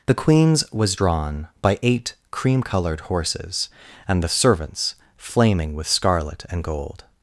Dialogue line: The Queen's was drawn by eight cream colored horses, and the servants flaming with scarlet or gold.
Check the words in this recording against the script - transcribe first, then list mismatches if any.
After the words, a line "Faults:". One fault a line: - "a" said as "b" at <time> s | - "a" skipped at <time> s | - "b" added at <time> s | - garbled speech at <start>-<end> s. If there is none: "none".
The Queen's was drawn by eight cream colored horses, and the servants flaming with scarlet and gold.
Faults:
- "or" said as "and" at 6.5 s